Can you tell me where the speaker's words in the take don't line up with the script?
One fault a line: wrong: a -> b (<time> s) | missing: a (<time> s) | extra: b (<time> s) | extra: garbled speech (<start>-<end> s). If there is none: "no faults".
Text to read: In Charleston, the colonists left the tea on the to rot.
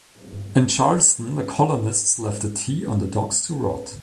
extra: docks (3.1 s)